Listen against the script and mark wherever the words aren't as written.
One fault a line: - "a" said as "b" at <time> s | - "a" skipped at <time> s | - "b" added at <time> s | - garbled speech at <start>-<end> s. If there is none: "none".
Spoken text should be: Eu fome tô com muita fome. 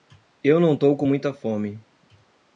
- "fome" said as "não" at 0.6 s